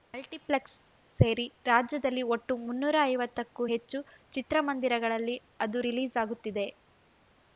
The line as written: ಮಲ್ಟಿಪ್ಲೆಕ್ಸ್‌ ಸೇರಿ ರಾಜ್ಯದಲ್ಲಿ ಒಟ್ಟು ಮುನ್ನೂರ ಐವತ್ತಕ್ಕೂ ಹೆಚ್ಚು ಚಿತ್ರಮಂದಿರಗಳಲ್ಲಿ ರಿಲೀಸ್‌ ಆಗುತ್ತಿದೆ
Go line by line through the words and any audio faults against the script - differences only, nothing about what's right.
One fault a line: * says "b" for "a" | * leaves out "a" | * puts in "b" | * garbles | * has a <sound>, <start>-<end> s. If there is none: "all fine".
* puts in "ಅದು"